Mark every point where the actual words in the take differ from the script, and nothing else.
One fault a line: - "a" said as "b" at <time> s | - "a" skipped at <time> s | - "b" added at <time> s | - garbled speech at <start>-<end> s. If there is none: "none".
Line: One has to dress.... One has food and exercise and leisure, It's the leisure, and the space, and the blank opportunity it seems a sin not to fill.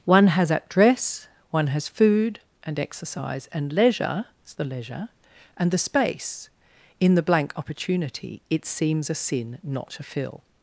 - "to" said as "at" at 0.5 s
- "and" said as "in" at 7.0 s